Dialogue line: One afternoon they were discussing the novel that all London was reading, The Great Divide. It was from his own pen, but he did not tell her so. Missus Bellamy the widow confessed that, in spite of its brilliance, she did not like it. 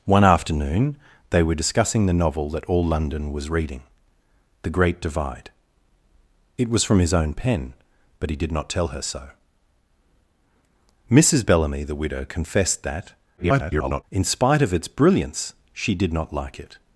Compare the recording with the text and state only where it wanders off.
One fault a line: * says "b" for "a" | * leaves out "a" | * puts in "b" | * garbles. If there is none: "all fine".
* garbles